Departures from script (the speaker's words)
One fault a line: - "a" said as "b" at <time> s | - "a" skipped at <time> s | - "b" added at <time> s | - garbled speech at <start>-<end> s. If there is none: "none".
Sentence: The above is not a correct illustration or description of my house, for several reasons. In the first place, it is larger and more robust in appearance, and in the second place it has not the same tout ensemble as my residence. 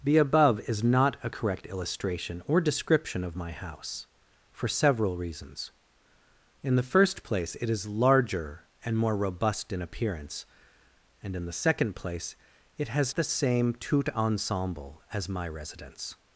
- "not" skipped at 13.1 s